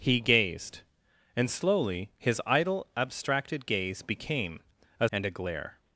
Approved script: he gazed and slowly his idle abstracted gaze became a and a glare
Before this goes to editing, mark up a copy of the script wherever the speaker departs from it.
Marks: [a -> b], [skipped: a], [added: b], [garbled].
he gazed and slowly his idle abstracted gaze became a and a glare